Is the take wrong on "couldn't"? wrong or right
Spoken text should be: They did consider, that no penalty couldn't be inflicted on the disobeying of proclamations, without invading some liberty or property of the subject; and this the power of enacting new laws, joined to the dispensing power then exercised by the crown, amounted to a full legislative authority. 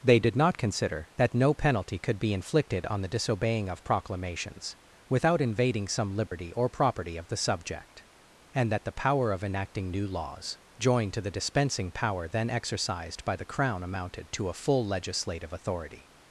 wrong